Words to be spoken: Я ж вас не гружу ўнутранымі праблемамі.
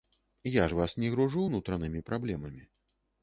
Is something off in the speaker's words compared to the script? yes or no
no